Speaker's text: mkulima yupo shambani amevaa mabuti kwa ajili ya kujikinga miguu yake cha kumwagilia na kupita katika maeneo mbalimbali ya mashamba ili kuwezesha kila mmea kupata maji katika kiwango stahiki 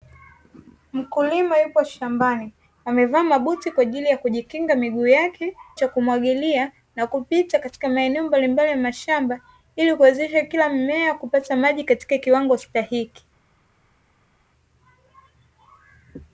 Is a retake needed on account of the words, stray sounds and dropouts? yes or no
no